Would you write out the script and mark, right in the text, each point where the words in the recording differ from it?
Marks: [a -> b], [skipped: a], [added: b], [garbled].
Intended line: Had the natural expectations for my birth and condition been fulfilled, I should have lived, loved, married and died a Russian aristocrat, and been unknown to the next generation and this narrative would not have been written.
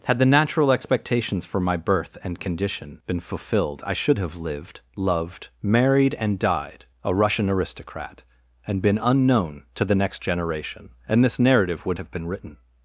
Had the natural expectations for my birth and condition been fulfilled, I should have lived, loved, married and died a Russian aristocrat, and been unknown to the next generation and this narrative would [skipped: not] have been written.